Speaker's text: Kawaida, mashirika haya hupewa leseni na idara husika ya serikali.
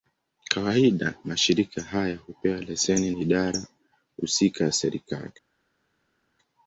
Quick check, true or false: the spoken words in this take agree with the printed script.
false